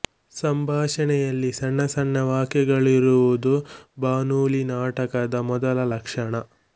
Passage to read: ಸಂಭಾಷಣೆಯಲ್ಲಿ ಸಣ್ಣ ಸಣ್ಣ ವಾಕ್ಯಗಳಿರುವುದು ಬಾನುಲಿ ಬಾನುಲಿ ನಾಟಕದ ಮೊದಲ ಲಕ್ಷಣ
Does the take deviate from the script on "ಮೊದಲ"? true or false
false